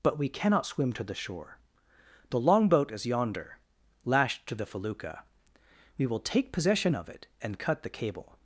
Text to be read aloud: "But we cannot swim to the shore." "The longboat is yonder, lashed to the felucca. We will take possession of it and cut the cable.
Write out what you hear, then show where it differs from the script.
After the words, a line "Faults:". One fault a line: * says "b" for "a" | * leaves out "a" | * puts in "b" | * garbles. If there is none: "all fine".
"But we cannot swim to the shore." "The longboat is yonder, lashed to the felucca. We will take possession of it and cut the cable.
Faults:
all fine